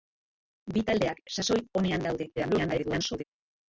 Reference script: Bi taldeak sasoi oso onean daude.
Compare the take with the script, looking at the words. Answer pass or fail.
fail